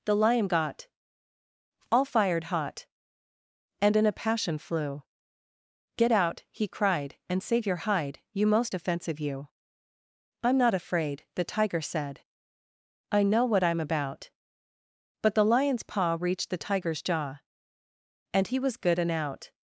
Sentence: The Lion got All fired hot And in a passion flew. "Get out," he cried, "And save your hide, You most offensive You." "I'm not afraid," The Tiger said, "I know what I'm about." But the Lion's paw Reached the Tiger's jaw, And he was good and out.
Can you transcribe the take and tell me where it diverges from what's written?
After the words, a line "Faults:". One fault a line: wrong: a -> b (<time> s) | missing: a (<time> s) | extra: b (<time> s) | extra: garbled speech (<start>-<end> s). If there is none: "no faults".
The Lion got All fired hot And in a passion flew. "Get out," he cried, "And save your hide, You most offensive You." "I'm not afraid," The Tiger said, "I know what I'm about." But the Lion's paw Reached the Tiger's jaw, And he was good and out.
Faults:
no faults